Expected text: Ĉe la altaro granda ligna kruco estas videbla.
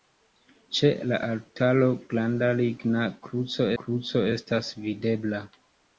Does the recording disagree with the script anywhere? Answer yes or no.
yes